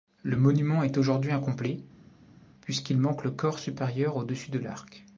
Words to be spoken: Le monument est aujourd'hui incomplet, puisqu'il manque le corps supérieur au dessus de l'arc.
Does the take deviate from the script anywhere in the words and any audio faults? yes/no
no